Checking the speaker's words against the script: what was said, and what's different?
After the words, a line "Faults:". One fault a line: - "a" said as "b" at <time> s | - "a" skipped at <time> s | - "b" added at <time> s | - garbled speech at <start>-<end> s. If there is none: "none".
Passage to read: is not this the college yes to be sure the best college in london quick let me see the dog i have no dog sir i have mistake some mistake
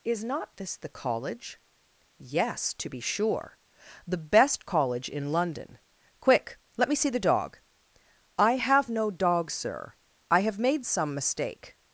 is not this the college yes to be sure the best college in london quick let me see the dog i have no dog sir i have made some mistake
Faults:
- "mistake" said as "made" at 10.6 s